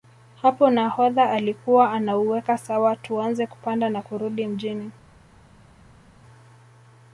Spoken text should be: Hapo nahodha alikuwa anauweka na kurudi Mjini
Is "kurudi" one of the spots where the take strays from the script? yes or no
no